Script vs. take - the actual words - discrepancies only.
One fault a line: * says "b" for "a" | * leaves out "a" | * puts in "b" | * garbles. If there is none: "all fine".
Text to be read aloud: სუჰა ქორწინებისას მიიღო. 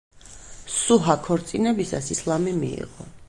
* puts in "ისლამი"